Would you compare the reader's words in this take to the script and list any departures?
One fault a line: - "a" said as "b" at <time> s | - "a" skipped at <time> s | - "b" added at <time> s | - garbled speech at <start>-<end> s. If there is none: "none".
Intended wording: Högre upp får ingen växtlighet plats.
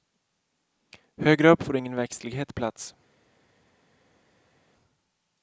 none